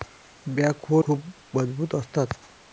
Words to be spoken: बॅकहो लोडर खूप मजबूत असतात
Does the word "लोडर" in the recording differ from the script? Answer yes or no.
yes